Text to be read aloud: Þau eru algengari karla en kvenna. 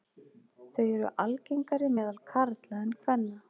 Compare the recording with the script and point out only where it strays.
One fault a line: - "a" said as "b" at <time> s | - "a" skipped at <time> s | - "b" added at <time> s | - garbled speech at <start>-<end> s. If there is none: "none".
- "meðal" added at 2.0 s